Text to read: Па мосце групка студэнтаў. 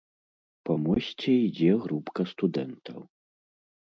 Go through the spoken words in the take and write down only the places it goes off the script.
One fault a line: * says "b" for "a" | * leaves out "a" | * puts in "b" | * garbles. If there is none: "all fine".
* puts in "ідзе"